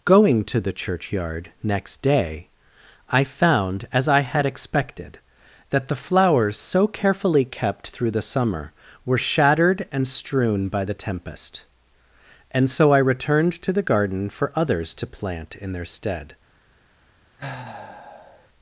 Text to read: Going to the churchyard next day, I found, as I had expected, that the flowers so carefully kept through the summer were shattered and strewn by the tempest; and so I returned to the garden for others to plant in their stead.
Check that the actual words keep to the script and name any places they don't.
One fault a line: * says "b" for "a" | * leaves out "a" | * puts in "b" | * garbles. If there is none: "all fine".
all fine